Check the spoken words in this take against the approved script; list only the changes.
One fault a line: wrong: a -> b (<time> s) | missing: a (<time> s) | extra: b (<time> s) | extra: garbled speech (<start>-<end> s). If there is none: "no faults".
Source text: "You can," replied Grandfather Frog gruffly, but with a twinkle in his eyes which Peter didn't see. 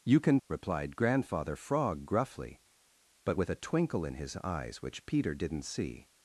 no faults